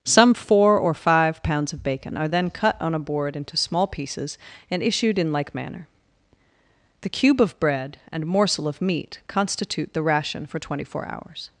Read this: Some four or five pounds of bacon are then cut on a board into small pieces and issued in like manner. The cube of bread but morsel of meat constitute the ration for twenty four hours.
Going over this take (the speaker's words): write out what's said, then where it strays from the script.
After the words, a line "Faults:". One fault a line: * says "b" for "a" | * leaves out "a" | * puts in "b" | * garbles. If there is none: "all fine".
Some four or five pounds of bacon are then cut on a board into small pieces and issued in like manner. The cube of bread and morsel of meat constitute the ration for twenty four hours.
Faults:
* says "and" for "but"